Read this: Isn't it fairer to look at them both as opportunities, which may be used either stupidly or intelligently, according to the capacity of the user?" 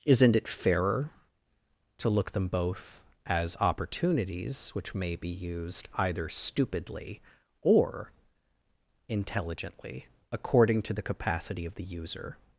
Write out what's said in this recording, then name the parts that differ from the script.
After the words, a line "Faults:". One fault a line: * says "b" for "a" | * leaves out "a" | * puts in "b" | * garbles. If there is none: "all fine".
Isn't it fairer to look them both as opportunities, which may be used either stupidly or intelligently, according to the capacity of the user?"
Faults:
* leaves out "at"